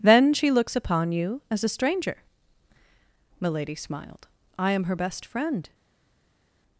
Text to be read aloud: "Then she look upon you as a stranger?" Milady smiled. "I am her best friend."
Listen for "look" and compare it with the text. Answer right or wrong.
wrong